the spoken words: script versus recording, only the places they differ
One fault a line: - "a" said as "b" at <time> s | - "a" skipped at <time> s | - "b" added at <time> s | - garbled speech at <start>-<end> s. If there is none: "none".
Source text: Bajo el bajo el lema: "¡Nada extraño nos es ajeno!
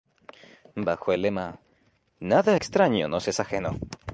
- "bajo el" skipped at 1.2 s